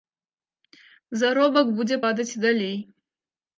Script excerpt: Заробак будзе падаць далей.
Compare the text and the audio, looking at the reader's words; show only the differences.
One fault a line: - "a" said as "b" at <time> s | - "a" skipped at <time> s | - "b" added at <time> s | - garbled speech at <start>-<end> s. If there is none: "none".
- "і" added at 2.4 s